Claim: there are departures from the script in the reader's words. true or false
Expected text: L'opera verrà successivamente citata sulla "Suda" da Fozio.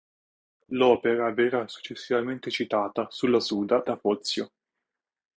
false